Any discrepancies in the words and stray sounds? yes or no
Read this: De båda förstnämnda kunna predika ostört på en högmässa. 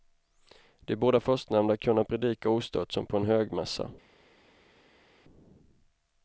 yes